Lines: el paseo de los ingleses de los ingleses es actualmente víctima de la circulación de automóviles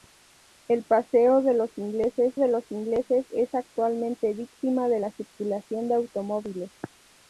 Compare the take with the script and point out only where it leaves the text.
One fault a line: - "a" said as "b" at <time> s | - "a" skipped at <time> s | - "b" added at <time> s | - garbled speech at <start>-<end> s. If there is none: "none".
none